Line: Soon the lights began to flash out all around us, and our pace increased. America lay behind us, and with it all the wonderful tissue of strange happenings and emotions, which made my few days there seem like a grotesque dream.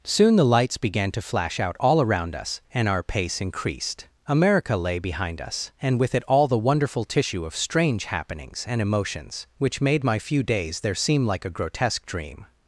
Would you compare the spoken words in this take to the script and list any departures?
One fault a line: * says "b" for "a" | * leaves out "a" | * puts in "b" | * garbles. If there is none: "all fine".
all fine